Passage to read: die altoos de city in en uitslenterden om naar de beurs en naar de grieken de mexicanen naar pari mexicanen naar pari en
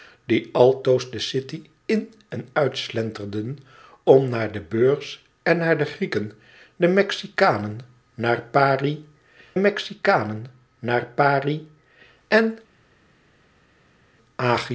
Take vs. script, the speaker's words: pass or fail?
pass